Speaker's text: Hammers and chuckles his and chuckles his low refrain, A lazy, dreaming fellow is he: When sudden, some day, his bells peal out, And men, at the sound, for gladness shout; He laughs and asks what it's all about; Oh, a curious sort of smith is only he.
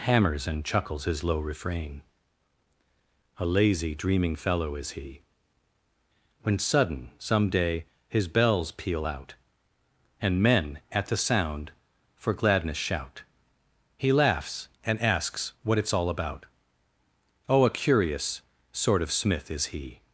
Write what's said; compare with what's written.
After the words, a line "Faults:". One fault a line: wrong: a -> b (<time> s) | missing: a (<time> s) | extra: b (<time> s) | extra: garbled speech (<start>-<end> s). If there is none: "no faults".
Hammers and chuckles his low refrain, A lazy, dreaming fellow is he: When sudden, some day, his bells peal out, And men, at the sound, for gladness shout; He laughs and asks what it's all about; Oh, a curious sort of smith is he.
Faults:
missing: and chuckles his (1.2 s)
missing: only (19.7 s)